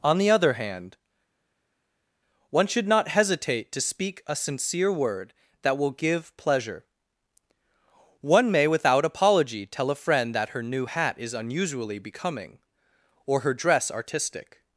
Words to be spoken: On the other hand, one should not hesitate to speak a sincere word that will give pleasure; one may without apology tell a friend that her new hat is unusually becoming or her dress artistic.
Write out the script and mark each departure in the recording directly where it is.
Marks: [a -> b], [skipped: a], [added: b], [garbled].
On the other hand, one should not hesitate to speak a sincere word that will give pleasure; one may without apology tell a friend that her new hat is unusually becoming or her dress artistic.